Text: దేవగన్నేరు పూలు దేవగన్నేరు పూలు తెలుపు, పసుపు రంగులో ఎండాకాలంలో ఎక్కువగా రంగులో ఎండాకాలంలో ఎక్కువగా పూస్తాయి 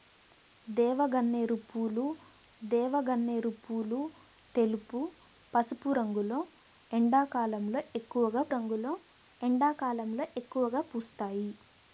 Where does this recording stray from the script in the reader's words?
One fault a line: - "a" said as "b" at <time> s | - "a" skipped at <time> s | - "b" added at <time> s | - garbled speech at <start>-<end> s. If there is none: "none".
none